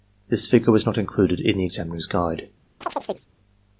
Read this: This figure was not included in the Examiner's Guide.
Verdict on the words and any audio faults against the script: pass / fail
fail